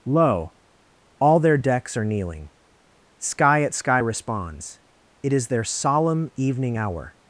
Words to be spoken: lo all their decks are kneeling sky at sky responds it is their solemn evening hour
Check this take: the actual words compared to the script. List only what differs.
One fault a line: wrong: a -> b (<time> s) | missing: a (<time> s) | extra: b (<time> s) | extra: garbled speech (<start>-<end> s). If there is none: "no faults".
no faults